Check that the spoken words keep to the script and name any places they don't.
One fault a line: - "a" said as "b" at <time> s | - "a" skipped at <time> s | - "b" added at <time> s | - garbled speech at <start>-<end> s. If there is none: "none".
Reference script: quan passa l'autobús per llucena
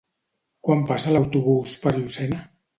none